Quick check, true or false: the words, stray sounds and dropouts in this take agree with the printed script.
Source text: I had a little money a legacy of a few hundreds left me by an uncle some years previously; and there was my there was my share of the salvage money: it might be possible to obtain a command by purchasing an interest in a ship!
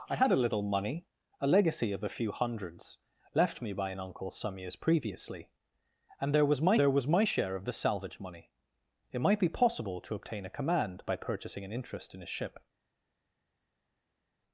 true